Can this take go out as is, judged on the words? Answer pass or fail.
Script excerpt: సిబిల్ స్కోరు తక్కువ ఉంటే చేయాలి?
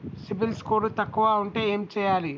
fail